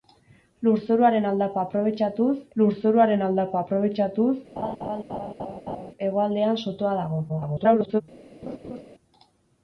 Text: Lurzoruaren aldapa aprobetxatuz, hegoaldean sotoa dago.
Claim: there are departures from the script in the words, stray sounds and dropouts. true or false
true